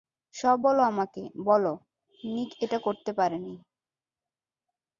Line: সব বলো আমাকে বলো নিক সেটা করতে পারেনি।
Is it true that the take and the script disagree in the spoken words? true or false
true